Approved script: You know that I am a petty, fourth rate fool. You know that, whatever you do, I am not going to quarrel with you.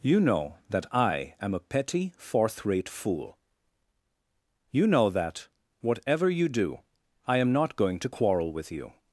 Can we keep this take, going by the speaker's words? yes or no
yes